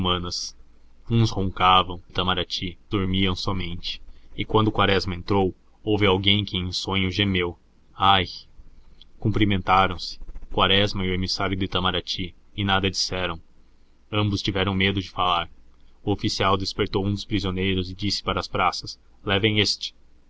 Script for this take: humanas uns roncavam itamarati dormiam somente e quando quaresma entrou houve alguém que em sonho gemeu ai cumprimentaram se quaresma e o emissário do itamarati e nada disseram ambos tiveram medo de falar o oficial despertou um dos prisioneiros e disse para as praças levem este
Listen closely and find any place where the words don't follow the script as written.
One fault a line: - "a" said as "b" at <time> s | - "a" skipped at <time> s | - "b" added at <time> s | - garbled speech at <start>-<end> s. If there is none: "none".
none